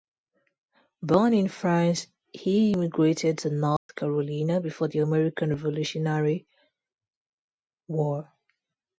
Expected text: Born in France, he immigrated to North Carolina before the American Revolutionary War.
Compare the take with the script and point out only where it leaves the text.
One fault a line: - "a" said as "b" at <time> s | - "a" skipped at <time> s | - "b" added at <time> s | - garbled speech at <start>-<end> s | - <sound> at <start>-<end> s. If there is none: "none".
- dropout at 3.8-3.9 s